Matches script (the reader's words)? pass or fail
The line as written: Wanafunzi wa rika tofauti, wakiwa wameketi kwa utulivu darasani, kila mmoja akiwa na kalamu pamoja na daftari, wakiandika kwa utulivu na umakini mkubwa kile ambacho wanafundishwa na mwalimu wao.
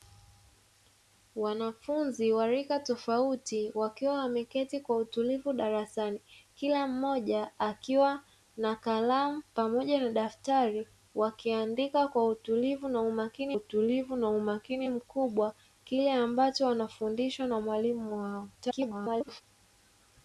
fail